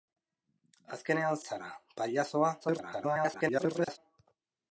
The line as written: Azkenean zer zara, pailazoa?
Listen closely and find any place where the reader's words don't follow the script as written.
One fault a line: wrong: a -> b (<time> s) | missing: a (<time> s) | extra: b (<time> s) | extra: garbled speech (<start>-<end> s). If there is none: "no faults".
missing: zer (1.4 s)
extra: garbled speech (2.6-4.0 s)